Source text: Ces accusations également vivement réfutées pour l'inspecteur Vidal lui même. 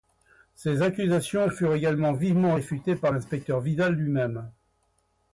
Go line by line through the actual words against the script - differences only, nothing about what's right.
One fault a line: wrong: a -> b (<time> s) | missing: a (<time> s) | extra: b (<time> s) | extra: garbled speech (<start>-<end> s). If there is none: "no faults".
extra: furent (1.5 s)
wrong: pour -> par (3.0 s)